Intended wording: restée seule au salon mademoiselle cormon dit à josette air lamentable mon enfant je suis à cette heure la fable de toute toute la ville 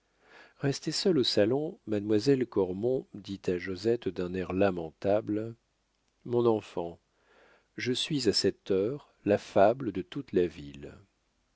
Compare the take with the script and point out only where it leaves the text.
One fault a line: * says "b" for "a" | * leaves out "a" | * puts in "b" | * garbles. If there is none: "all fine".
* puts in "d'un"
* leaves out "toute"